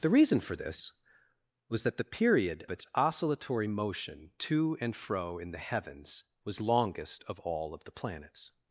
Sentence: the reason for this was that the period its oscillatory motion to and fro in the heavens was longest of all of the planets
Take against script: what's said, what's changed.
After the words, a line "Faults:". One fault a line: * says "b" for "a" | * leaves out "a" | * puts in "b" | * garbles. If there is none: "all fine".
the reason for this was that the period its oscillatory motion to and fro in the heavens was longest of all of the planets
Faults:
all fine